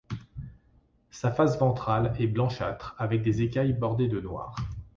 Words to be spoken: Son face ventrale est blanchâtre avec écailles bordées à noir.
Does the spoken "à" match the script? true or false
false